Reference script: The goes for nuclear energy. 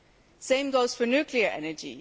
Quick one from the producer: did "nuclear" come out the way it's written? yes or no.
yes